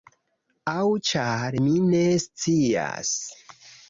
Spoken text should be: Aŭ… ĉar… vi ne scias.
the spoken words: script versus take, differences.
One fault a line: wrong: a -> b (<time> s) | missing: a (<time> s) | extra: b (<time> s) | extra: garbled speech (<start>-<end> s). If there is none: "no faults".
wrong: vi -> mi (1.6 s)